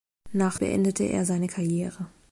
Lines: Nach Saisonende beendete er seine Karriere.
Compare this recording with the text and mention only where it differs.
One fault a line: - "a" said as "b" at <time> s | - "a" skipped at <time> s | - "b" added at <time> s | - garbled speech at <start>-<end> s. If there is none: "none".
- "Saisonende" skipped at 0.6 s